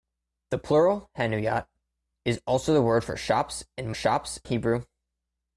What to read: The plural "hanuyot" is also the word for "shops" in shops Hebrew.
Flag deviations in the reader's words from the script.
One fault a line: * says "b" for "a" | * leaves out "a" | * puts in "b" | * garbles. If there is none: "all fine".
all fine